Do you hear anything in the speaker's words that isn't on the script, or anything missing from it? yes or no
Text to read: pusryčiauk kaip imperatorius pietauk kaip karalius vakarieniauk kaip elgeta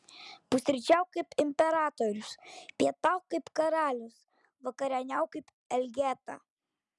no